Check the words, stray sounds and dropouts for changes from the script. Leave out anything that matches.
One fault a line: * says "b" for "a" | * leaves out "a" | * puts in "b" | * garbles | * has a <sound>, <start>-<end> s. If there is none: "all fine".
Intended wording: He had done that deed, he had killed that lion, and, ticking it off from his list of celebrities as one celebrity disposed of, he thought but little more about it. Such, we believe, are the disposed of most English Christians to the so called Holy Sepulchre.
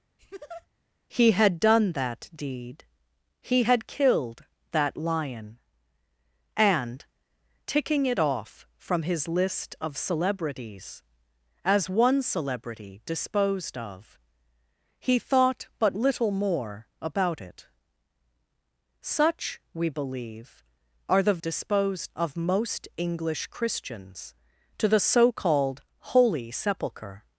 * has a laugh, 0.2-0.7 s